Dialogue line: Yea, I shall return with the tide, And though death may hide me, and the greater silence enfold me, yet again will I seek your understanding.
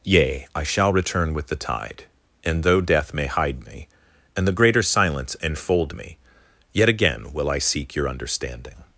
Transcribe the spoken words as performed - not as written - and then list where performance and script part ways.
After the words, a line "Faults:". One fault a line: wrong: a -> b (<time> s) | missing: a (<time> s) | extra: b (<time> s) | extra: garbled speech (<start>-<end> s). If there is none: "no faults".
Yea, I shall return with the tide, And though death may hide me, and the greater silence enfold me, yet again will I seek your understanding.
Faults:
no faults